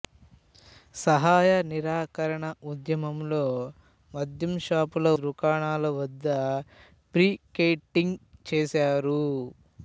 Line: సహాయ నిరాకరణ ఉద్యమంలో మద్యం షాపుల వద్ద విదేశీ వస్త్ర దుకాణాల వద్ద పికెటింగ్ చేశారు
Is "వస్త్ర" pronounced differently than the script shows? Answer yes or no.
yes